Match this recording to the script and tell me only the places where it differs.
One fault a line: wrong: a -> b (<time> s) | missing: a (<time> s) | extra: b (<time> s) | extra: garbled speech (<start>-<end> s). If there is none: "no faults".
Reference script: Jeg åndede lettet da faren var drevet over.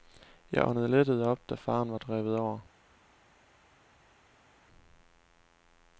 extra: op (1.3 s)